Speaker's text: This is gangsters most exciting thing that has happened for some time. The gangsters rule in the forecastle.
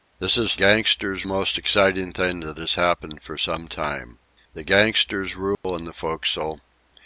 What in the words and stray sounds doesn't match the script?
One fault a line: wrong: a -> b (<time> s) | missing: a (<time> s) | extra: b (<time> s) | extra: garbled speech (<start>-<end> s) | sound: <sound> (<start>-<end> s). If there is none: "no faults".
sound: dropout (5.5-5.6 s)